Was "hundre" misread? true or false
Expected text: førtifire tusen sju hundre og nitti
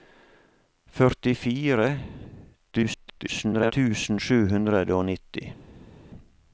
false